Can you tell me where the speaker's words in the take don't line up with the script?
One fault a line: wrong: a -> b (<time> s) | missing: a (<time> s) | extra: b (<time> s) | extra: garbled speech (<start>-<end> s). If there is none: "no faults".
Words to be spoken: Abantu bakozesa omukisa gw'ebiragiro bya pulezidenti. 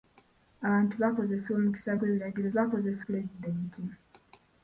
wrong: bya -> bakozesa (2.6 s)